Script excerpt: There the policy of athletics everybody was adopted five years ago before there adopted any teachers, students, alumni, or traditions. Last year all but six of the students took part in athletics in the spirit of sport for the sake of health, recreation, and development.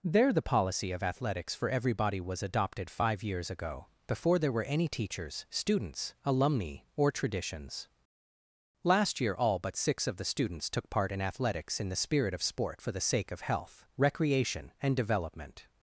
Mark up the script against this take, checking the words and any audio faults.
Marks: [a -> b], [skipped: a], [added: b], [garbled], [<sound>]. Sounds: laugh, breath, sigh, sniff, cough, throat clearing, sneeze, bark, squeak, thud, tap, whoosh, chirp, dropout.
There the policy of athletics [added: for] everybody was adopted five years ago before there [adopted -> were] any teachers, students, alumni, or traditions. Last year all but six of the students took part in athletics in the spirit of sport for the sake of health, recreation, and development.